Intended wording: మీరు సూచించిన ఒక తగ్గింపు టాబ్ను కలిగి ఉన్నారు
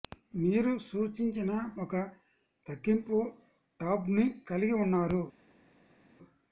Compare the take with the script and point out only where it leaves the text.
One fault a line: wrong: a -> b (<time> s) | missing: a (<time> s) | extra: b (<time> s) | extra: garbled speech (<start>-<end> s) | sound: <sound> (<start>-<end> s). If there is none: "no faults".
no faults